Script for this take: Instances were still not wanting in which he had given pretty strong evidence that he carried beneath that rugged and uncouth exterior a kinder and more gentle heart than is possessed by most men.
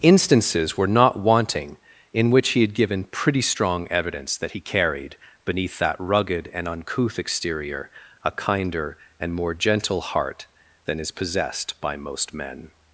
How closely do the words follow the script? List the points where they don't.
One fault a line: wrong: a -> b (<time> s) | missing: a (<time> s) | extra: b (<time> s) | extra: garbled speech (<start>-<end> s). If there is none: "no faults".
missing: still (0.9 s)